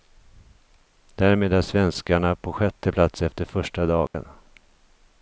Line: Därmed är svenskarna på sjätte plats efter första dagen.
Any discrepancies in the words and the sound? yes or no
yes